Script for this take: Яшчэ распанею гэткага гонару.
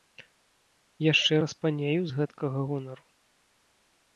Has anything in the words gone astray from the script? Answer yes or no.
yes